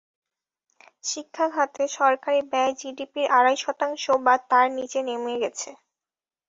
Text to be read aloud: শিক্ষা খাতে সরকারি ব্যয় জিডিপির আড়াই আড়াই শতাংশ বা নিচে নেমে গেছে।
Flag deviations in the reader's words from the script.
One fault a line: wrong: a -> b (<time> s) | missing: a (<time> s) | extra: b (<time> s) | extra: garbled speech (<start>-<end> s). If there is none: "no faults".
missing: আড়াই (3.6 s)
extra: তার (4.5 s)